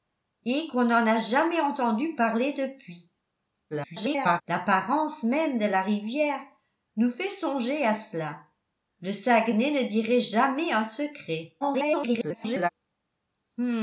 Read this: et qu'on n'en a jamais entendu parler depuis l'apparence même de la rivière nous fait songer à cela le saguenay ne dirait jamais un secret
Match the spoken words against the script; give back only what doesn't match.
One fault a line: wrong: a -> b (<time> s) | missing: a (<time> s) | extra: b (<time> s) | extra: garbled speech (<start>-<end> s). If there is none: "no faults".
extra: garbled speech (3.7-4.4 s)
extra: garbled speech (11.6-12.7 s)